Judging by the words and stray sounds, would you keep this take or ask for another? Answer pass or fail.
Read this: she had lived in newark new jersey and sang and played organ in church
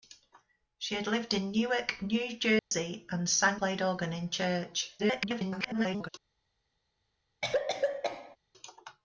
fail